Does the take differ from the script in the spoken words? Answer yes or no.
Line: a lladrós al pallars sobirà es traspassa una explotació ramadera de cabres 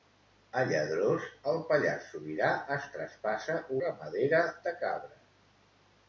yes